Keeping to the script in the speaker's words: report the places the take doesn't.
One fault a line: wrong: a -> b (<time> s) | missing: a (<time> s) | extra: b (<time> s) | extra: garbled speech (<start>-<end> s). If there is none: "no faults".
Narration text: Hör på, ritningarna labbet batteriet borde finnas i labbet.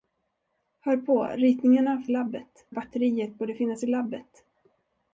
no faults